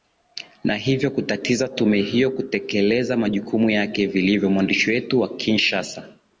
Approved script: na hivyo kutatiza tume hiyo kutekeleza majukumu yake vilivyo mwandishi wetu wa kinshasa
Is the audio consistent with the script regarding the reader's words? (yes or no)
yes